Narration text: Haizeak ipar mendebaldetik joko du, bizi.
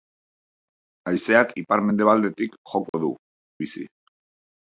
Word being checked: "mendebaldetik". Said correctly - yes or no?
yes